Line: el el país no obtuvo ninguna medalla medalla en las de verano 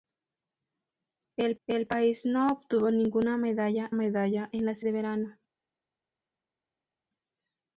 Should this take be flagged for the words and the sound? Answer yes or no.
no